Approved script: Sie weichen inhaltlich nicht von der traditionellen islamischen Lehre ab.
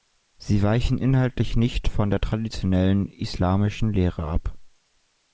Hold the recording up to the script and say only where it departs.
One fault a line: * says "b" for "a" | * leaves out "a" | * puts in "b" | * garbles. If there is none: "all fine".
all fine